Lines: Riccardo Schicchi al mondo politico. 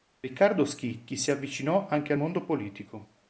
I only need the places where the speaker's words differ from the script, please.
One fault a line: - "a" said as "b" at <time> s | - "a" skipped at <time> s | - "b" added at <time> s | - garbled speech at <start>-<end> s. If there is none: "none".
- "si avvicinò anche" added at 1.1 s